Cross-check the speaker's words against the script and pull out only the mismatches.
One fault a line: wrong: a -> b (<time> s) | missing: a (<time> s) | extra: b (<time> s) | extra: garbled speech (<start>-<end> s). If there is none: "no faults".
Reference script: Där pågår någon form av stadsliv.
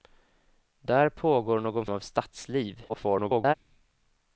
missing: form (1.9 s)
extra: garbled speech (2.9-3.5 s)